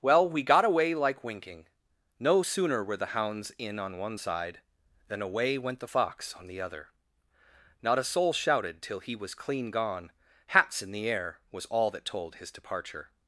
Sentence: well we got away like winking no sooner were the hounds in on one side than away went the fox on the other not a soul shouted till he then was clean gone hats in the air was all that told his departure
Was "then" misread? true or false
true